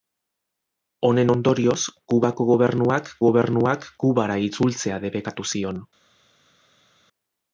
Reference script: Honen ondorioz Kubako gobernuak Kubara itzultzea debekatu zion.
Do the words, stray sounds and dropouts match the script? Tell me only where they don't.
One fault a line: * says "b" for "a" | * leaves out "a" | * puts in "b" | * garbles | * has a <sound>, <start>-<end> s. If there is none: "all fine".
* puts in "gobernuak"